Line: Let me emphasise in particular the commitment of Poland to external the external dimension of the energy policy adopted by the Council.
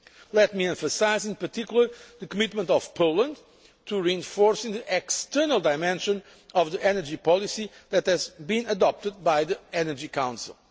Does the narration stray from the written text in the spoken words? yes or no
yes